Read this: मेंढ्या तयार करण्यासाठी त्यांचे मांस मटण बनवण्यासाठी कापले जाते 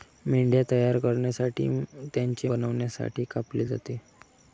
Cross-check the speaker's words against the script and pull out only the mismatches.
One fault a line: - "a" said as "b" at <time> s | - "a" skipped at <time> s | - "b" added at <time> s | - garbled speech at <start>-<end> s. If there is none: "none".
- "मांस मटण" skipped at 2.5 s